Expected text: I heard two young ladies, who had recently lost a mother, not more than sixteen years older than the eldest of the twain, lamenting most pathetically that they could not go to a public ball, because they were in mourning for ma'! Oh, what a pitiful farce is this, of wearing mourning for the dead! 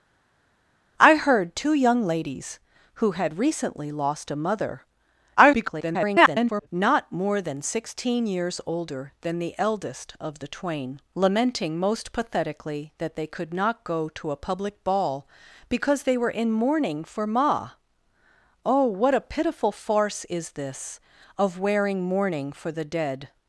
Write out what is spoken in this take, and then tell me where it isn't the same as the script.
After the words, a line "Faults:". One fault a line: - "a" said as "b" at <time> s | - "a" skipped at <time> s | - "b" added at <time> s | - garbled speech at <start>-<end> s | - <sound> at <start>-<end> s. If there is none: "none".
I heard two young ladies, who had recently lost a mother, [garbled] not more than sixteen years older than the eldest of the twain, lamenting most pathetically that they could not go to a public ball, because they were in mourning for ma'! Oh, what a pitiful farce is this, of wearing mourning for the dead!
Faults:
- garbled speech at 5.4-6.7 s